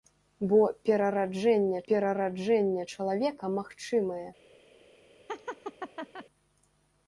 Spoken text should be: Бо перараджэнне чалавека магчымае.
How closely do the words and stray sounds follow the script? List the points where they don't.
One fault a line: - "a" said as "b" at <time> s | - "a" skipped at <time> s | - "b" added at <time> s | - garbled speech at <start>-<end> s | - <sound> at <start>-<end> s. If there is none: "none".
- "перараджэнне" added at 1.9 s
- laugh at 5.3-6.3 s